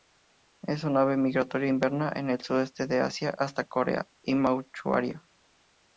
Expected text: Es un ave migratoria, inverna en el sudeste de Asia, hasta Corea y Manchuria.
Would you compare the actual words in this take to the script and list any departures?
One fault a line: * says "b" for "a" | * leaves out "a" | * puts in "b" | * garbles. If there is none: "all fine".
all fine